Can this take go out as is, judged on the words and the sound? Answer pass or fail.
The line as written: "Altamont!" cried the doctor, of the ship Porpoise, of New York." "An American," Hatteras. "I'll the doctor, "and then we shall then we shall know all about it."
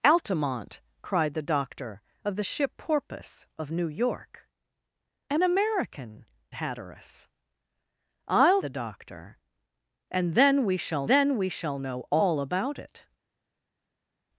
pass